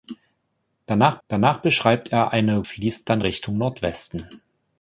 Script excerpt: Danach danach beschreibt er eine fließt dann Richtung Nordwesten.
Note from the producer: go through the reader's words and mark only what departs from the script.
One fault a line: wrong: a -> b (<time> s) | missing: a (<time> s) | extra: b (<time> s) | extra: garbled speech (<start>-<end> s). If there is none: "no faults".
no faults